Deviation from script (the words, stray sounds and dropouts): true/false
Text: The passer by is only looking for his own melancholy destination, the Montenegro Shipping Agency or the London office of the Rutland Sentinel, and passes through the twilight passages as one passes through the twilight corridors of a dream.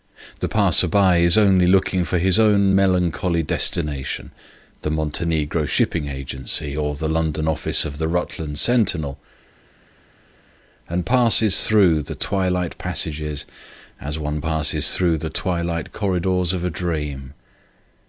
false